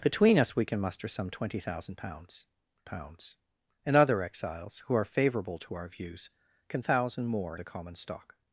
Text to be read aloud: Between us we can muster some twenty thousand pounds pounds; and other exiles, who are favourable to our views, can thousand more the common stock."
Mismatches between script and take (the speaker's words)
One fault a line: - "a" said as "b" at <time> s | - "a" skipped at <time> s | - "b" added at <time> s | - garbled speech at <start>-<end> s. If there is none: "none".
none